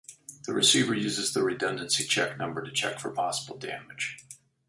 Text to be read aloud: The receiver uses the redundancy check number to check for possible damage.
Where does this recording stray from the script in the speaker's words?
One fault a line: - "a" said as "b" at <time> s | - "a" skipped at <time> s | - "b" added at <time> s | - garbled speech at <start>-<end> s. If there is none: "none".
none